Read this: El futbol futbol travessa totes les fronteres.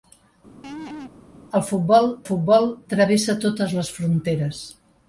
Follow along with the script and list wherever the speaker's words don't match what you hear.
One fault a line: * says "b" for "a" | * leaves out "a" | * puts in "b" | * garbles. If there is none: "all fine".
all fine